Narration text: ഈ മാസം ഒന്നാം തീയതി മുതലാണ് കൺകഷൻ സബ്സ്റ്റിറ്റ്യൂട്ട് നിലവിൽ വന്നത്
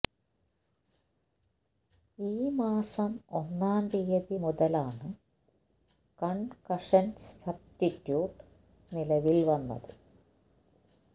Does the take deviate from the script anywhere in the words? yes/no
no